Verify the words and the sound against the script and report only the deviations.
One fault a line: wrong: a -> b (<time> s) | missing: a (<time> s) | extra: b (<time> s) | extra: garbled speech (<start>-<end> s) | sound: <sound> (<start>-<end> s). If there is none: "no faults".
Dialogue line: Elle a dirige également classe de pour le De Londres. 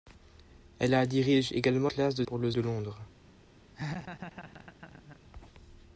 sound: laugh (3.7-5.2 s)